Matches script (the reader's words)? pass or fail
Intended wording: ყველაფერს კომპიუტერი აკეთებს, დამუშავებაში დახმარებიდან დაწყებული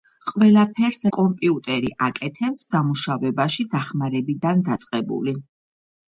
pass